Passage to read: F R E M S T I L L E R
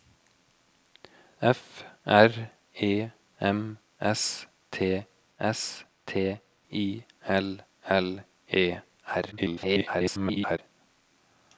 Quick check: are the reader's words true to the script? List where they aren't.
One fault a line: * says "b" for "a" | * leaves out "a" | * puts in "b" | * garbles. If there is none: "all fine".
* puts in "S T"
* garbles